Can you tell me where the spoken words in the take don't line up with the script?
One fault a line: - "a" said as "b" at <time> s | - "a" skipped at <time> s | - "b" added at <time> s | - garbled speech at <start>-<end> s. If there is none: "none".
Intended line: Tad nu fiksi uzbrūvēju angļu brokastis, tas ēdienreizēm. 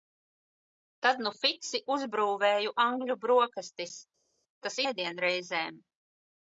none